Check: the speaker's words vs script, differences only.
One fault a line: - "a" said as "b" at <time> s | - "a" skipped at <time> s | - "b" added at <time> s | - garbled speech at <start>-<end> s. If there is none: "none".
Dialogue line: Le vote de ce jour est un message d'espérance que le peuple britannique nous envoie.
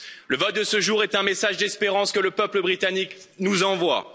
none